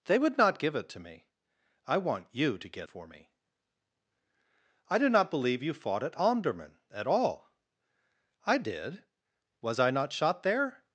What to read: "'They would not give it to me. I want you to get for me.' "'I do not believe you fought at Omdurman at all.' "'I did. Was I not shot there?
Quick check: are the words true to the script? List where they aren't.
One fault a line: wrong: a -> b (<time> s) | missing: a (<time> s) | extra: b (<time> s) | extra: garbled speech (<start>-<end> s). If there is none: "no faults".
no faults